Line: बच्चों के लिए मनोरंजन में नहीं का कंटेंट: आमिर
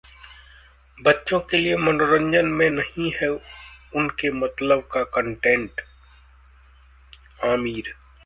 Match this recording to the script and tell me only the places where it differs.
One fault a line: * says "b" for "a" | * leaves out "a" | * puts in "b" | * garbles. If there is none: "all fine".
* puts in "है उनके मतलब"